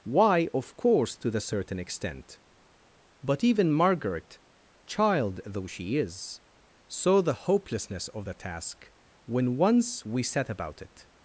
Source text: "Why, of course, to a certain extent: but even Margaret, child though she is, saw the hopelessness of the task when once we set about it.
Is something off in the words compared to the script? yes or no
yes